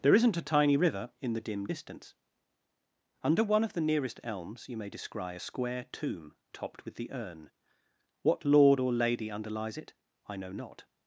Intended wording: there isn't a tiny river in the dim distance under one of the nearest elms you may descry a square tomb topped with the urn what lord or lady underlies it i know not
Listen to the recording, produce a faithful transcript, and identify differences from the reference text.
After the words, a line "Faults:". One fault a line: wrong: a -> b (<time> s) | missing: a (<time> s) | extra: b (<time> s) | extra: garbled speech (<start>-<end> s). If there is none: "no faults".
there isn't a tiny river in the dim distance under one of the nearest elms you may descry a square tomb topped with the urn what lord or lady underlies it i know not
Faults:
no faults